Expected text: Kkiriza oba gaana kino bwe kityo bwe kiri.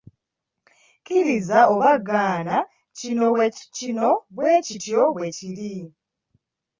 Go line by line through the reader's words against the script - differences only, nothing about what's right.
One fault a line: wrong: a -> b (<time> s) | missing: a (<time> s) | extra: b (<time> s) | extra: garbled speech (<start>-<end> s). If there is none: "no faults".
no faults